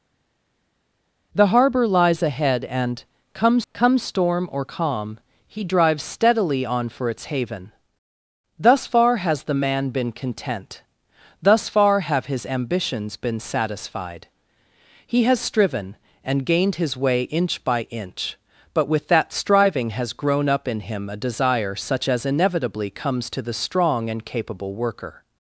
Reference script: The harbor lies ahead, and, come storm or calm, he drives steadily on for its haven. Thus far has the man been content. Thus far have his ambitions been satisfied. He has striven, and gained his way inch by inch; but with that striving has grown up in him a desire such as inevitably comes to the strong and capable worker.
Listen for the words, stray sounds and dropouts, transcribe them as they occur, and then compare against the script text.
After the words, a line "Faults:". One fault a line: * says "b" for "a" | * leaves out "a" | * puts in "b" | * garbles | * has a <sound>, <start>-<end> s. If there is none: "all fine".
The harbor lies ahead, and, come come storm or calm, he drives steadily on for its haven. Thus far has the man been content. Thus far have his ambitions been satisfied. He has striven, and gained his way inch by inch; but with that striving has grown up in him a desire such as inevitably comes to the strong and capable worker.
Faults:
* puts in "come"